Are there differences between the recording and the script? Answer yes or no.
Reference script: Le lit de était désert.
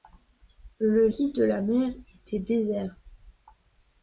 yes